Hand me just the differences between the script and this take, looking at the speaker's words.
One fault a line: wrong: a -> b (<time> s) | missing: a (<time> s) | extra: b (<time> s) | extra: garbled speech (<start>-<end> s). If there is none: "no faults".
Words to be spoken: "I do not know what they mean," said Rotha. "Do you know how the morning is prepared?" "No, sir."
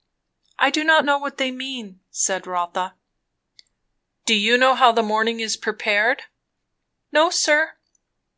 no faults